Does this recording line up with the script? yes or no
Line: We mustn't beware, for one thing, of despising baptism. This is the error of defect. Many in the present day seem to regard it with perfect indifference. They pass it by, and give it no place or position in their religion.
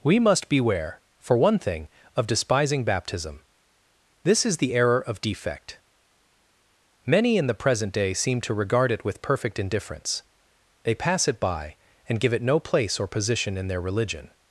no